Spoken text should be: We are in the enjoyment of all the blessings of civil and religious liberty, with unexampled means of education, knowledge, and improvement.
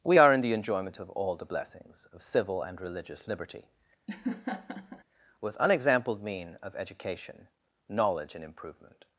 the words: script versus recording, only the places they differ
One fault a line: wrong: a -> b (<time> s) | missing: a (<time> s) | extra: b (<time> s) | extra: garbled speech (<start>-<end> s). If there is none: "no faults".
wrong: means -> mean (6.2 s)